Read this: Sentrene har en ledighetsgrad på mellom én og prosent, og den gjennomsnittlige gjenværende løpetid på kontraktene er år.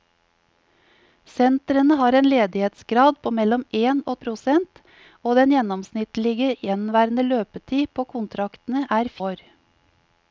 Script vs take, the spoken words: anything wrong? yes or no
no